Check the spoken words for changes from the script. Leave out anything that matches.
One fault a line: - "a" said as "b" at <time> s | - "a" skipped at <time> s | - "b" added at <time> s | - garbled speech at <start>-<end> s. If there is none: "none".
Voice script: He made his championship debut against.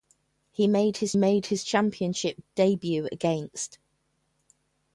- "made his" added at 1.1 s